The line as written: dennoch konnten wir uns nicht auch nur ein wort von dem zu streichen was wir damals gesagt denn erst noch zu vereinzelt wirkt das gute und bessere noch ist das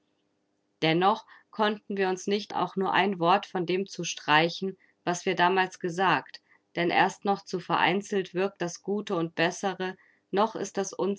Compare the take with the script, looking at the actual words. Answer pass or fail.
pass